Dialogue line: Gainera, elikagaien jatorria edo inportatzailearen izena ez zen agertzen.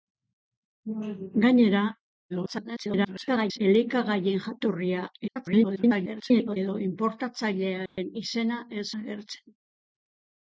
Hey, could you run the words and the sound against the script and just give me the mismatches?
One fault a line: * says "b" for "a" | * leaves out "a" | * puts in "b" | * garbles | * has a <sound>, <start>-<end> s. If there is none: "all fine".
* garbles
* garbles
* has a dropout, 7.9-8.0 s
* leaves out "zen"